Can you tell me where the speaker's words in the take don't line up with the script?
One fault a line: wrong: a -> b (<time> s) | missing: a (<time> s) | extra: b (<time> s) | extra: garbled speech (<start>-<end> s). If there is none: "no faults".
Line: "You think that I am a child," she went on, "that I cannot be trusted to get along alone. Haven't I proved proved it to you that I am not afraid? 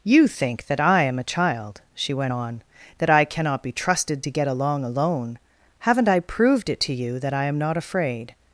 missing: proved (6.7 s)